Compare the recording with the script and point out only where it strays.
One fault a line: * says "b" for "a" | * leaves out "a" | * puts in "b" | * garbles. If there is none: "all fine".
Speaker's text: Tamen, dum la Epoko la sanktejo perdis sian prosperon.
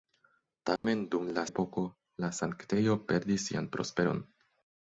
all fine